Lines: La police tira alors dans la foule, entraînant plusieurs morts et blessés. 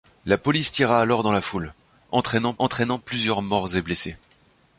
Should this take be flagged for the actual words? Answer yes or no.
yes